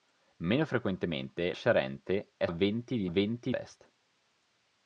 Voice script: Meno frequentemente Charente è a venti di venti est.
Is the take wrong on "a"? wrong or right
right